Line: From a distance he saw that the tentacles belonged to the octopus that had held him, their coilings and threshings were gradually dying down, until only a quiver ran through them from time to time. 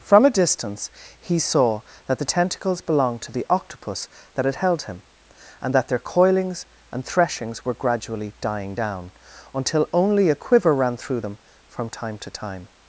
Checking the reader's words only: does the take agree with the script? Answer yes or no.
no